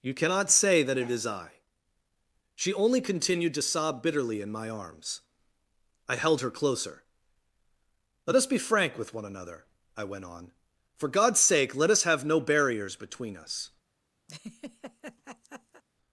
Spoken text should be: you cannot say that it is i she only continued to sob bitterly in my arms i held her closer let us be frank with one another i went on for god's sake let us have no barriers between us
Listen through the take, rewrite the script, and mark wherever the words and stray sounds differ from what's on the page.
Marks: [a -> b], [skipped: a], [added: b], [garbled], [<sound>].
you cannot say that it is i she only continued to sob bitterly in my arms i held her closer let us be frank with one another i went on for god's sake let us have no barriers between us [laugh]